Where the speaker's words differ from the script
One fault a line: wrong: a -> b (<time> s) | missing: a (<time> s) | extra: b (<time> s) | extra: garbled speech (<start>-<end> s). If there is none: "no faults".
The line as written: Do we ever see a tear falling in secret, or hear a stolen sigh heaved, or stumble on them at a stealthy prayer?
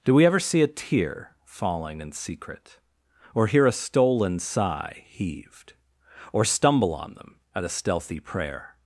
no faults